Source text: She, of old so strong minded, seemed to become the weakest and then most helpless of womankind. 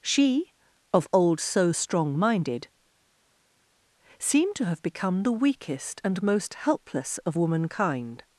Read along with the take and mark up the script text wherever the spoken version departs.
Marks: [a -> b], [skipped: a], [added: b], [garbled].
She, of old so strong minded, seemed to [added: have] become the weakest and [skipped: then] most helpless of womankind.